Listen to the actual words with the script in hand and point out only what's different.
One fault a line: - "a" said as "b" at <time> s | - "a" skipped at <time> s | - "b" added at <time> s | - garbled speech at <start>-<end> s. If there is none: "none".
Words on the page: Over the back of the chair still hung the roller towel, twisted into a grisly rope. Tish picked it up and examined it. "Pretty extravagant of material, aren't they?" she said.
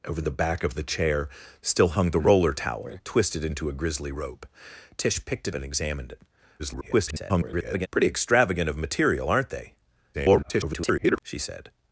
- "up" skipped at 5.5 s
- garbled speech at 6.6-7.9 s
- garbled speech at 10.1-11.2 s